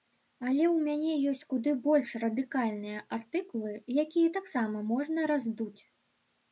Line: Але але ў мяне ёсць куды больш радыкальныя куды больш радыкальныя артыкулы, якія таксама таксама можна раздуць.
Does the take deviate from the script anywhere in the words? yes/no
yes